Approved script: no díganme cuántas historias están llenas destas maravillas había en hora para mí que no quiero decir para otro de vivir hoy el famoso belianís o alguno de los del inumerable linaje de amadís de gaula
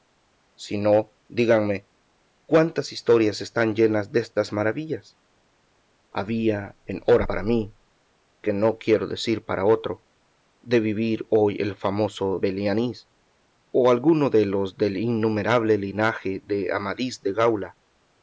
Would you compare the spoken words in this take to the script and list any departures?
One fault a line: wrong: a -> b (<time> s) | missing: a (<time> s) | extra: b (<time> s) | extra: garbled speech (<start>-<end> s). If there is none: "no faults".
no faults